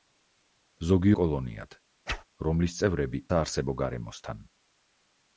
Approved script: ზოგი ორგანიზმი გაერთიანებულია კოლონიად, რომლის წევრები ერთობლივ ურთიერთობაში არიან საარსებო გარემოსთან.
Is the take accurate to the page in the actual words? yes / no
no